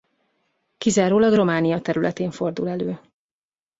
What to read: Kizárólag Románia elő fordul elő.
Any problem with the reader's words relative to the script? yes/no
yes